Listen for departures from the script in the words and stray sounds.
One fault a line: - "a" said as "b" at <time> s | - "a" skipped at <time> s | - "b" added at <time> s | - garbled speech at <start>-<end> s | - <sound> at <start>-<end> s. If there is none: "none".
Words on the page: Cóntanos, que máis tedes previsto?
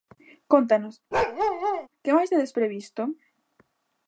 - bark at 1.1-1.9 s